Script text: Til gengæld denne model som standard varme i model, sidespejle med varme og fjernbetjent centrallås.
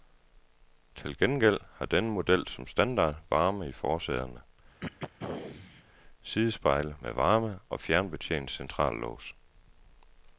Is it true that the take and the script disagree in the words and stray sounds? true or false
true